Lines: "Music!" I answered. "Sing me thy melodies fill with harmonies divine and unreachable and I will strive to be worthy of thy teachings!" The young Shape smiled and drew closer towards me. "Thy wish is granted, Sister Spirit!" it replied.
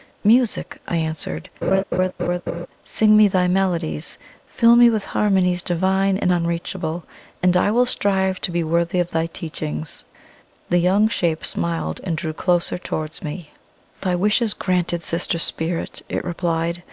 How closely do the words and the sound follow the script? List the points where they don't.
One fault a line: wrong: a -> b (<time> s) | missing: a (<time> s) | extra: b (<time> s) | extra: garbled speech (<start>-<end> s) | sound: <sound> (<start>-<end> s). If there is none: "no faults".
sound: laugh (1.6-2.7 s)
extra: me (4.8 s)